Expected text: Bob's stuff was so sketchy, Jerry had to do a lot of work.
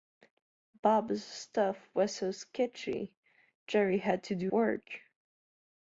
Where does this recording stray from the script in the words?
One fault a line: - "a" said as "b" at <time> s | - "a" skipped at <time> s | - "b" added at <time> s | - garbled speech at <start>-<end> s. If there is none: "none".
- "a lot of" skipped at 4.5 s